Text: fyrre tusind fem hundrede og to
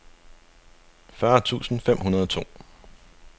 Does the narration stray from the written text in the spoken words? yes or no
no